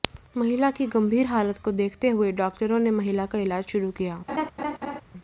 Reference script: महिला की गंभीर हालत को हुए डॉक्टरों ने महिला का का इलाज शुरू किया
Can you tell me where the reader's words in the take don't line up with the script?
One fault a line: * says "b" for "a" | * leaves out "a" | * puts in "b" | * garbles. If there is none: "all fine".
* puts in "देखते"
* leaves out "का"